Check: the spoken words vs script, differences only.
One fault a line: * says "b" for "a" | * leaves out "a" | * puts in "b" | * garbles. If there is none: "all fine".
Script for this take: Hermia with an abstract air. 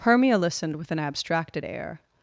* puts in "listened"
* says "abstracted" for "abstract"